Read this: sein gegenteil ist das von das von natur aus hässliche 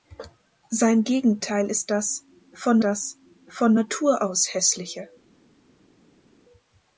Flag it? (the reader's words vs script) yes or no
no